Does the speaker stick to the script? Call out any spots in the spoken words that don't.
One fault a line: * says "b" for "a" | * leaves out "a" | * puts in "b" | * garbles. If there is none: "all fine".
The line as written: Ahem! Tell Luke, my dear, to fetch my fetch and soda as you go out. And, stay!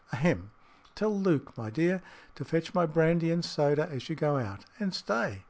* says "brandy" for "fetch"